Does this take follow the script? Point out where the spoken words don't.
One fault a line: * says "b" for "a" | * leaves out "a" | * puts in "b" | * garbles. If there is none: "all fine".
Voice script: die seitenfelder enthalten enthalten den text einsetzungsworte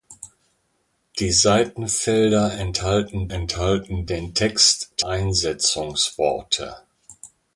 all fine